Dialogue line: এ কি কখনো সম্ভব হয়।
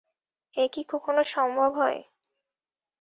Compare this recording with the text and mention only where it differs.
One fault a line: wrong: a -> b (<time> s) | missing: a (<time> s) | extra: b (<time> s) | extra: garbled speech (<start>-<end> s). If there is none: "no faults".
no faults